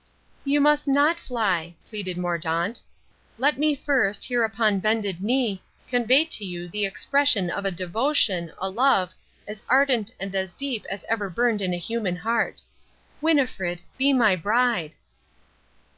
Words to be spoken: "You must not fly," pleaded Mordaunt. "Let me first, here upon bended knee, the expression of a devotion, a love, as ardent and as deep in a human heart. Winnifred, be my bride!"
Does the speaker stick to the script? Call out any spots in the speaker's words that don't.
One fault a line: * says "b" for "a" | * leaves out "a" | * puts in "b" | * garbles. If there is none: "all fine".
* puts in "convey to you"
* puts in "as ever burned"